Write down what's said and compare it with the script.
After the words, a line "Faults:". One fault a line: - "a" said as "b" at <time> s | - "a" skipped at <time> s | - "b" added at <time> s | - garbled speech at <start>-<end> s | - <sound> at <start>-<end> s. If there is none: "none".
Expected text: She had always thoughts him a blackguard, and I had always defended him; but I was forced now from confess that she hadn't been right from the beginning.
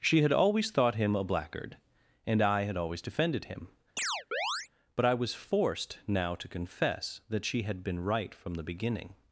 She had always thought him a blackguard, and I had always defended him; but I was forced now to confess that she had been right from the beginning.
Faults:
- "thoughts" said as "thought" at 0.7 s
- chirp at 4.0-4.7 s
- "from" said as "to" at 6.3 s
- "hadn't" said as "had" at 7.6 s